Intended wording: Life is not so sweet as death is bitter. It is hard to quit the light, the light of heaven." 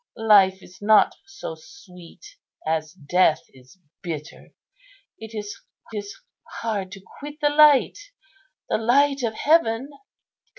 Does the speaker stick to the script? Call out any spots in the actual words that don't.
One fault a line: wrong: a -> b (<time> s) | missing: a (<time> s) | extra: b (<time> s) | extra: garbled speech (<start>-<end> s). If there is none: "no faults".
extra: is (5.9 s)